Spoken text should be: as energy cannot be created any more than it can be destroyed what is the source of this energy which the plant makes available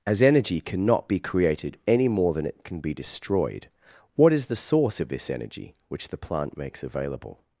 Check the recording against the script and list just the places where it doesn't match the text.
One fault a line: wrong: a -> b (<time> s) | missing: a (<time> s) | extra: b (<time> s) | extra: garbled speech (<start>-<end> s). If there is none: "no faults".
no faults